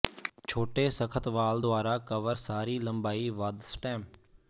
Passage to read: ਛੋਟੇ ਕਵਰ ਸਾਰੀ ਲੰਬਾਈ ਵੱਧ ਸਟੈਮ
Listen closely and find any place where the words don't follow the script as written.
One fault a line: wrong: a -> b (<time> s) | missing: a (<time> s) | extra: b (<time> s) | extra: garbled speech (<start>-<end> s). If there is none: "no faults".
extra: ਸਖ਼ਤ ਵਾਲ ਦੁਆਰਾ (0.9 s)